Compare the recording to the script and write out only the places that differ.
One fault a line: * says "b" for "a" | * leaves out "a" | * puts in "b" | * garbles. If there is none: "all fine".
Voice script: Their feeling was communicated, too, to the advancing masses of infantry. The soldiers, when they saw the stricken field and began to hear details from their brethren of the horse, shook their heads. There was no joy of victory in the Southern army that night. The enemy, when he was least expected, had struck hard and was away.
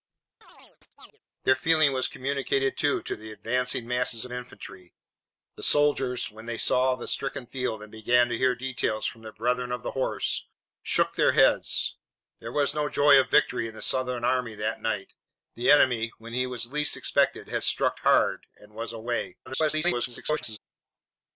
* leaves out "of"
* garbles